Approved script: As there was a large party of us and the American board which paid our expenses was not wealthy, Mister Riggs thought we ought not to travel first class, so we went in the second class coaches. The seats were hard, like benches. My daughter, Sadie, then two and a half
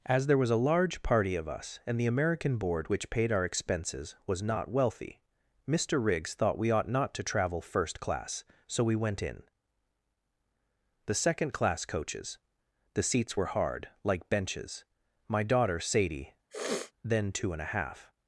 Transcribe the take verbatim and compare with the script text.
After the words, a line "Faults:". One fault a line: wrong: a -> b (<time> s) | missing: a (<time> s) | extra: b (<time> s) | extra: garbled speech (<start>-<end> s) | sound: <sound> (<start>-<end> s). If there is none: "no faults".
As there was a large party of us and the American board which paid our expenses was not wealthy, Mister Riggs thought we ought not to travel first class, so we went in the second class coaches. The seats were hard, like benches. My daughter, Sadie, then two and a half
Faults:
sound: sniff (16.5-16.9 s)